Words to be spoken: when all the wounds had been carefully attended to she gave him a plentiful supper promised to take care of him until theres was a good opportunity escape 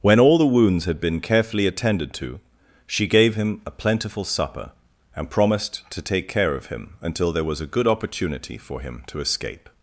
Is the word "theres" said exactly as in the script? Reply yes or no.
no